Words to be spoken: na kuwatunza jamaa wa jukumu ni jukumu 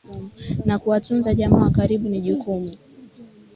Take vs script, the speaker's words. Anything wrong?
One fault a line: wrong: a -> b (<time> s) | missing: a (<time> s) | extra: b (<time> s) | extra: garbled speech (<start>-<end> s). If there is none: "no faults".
wrong: jukumu -> karibu (1.7 s)